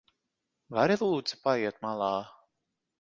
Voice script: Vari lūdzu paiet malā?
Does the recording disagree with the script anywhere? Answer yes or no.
no